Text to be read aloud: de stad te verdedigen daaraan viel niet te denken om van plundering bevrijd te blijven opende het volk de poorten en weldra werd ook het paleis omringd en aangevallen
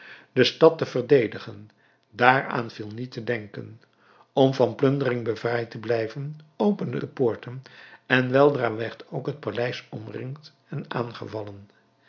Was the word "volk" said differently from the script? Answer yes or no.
yes